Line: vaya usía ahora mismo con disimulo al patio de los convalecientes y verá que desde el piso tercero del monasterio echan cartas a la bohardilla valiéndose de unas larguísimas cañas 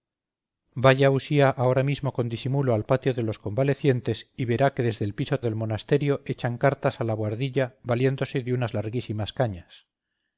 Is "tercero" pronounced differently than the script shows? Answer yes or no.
yes